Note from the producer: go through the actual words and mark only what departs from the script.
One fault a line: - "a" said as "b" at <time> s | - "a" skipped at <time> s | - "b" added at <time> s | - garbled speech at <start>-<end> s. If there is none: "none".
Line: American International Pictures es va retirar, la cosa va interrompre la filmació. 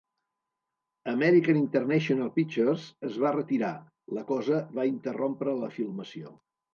none